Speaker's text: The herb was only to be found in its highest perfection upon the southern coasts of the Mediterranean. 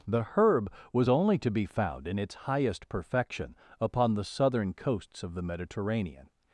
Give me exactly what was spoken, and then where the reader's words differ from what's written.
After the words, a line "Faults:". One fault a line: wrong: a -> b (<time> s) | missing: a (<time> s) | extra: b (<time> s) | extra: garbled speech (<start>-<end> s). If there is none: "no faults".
The herb was only to be found in its highest perfection upon the southern coasts of the Mediterranean.
Faults:
no faults